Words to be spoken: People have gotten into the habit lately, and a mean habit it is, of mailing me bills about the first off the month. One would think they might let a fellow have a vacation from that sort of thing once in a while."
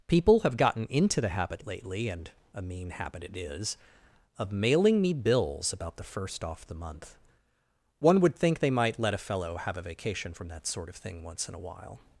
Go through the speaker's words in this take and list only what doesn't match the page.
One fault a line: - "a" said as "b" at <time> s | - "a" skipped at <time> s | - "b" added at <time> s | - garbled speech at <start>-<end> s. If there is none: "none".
none